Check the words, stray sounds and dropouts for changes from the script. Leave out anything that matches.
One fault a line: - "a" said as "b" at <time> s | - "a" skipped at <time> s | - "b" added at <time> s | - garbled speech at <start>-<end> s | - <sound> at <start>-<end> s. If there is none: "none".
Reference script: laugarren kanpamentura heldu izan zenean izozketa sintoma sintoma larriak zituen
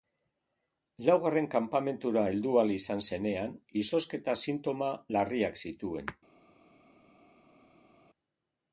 - "ahal" added at 2.6 s
- "sintoma" skipped at 4.9 s